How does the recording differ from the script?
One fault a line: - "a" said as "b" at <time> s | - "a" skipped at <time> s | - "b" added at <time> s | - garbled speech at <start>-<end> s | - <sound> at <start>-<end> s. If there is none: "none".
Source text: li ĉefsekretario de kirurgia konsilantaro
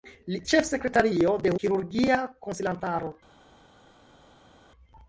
none